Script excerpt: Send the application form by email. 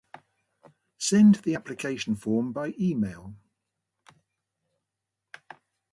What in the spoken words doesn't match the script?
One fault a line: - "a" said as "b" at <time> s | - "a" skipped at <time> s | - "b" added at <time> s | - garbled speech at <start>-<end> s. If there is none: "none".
none